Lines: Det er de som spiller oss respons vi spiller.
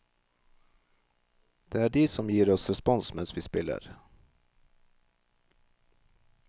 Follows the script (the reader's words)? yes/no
no